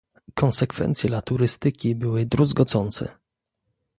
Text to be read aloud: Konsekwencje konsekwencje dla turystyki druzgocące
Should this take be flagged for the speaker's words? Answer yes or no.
yes